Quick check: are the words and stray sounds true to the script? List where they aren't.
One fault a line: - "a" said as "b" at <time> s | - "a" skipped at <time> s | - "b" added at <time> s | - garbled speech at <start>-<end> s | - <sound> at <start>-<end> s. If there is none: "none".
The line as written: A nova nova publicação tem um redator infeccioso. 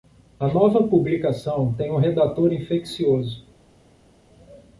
- "nova" skipped at 0.8 s